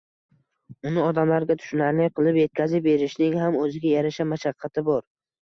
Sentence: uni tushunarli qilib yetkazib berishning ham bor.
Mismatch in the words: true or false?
true